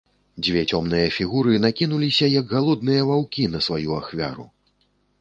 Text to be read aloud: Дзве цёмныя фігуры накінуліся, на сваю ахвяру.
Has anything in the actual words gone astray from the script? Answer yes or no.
yes